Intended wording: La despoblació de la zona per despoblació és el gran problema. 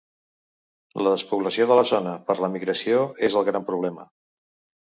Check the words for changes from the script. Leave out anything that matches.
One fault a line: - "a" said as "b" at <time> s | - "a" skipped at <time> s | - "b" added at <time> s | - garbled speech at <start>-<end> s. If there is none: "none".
- "despoblació" said as "l'emigració" at 2.5 s